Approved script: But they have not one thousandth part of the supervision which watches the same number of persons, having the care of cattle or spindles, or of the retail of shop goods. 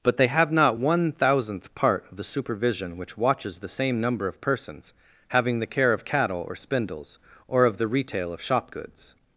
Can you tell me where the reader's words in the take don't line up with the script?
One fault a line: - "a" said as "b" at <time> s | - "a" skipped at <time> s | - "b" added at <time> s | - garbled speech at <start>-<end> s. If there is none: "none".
none